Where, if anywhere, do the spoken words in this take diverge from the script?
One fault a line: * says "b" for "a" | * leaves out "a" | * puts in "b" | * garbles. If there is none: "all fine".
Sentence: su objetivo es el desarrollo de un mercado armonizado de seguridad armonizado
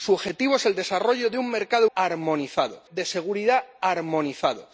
all fine